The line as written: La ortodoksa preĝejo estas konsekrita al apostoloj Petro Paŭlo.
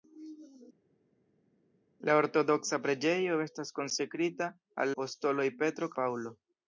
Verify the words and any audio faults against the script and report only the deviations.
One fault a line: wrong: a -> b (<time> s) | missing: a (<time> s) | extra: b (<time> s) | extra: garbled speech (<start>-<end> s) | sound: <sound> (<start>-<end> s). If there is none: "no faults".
no faults